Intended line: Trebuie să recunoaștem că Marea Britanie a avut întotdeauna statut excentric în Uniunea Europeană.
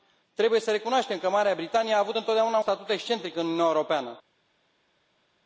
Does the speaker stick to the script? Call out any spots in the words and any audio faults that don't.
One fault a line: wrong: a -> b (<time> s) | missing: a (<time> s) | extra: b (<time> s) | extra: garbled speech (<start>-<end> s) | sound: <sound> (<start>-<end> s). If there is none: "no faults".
no faults